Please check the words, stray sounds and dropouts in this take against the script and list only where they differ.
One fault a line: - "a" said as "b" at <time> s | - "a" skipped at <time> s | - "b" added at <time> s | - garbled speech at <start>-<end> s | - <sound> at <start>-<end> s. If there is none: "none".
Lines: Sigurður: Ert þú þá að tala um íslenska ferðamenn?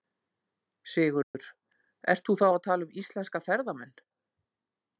- dropout at 1.2-1.3 s